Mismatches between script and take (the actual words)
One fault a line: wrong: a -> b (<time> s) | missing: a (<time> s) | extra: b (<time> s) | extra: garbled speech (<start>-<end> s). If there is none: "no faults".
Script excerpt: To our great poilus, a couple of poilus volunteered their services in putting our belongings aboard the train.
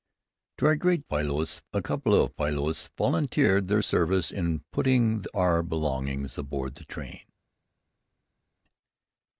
no faults